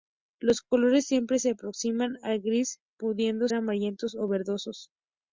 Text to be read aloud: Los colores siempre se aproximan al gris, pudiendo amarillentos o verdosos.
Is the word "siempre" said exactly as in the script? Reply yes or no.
yes